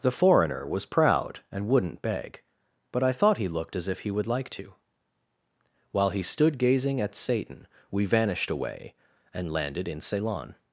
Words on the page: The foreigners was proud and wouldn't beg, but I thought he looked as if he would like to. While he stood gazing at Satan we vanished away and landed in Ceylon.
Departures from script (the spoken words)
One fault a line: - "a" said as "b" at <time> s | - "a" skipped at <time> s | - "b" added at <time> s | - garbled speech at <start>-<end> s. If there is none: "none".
- "foreigners" said as "foreigner" at 0.1 s